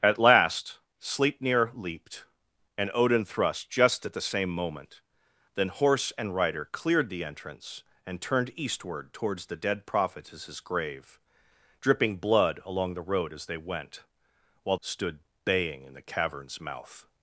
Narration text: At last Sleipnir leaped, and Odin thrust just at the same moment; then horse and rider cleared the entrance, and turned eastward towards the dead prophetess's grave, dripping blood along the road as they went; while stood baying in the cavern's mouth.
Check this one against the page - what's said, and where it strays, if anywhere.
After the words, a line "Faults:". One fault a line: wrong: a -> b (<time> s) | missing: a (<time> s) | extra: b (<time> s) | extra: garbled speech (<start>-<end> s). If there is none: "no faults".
At last Sleipnir leaped, and Odin thrust just at the same moment; then horse and rider cleared the entrance, and turned eastward towards the dead prophetess's grave, dripping blood along the road as they went; while stood baying in the cavern's mouth.
Faults:
no faults